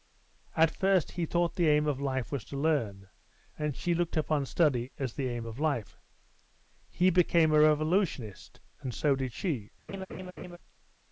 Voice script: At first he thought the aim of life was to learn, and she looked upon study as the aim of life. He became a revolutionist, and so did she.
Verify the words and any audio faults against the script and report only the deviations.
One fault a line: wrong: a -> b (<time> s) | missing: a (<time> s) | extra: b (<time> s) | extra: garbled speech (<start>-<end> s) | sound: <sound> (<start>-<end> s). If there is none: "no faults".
sound: laugh (9.9-10.6 s)